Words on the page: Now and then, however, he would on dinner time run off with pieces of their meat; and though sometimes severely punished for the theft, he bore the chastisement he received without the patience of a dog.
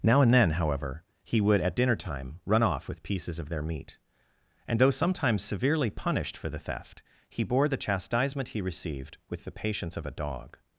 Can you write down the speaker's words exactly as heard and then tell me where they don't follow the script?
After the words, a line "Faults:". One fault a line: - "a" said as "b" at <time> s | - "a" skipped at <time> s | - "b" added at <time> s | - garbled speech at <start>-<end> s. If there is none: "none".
Now and then, however, he would at dinner time run off with pieces of their meat; and though sometimes severely punished for the theft, he bore the chastisement he received with the patience of a dog.
Faults:
- "on" said as "at" at 1.6 s
- "without" said as "with" at 9.3 s